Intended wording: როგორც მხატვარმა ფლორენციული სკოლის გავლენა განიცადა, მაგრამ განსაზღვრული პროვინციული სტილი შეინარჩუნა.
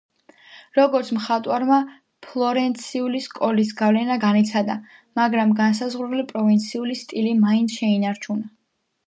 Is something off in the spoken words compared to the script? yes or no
yes